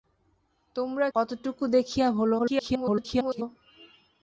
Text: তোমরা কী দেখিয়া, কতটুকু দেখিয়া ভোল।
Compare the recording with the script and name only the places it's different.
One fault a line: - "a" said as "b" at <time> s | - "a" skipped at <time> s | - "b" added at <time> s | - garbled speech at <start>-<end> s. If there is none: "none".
- "কী দেখিয়া" skipped at 1.1 s
- garbled speech at 2.4-3.4 s